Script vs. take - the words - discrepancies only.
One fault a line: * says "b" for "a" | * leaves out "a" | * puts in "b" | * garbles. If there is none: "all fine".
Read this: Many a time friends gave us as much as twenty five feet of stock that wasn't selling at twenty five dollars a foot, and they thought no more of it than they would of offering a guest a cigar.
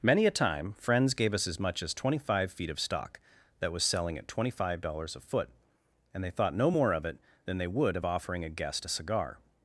* says "was" for "wasn't"